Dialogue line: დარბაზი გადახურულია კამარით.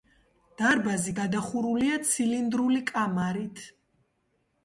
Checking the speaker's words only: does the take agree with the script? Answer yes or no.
no